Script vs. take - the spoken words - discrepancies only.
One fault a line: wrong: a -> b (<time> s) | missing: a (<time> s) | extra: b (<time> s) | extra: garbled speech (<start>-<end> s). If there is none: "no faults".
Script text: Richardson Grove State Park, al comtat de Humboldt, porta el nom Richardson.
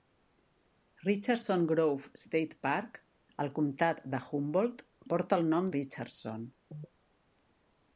no faults